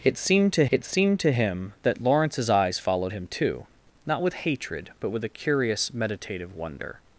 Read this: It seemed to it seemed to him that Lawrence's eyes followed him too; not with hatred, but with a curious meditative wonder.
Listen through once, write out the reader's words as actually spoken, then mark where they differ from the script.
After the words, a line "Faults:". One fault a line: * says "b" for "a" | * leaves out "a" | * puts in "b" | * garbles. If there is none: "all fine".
It seemed to it seemed to him that Lawrence's eyes followed him too; not with hatred, but with a curious meditative wonder.
Faults:
all fine